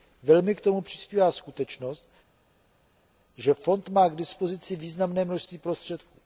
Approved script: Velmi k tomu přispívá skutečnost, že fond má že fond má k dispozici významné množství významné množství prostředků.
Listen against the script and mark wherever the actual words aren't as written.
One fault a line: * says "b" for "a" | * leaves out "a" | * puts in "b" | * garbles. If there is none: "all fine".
* leaves out "že fond má"
* leaves out "významné množství"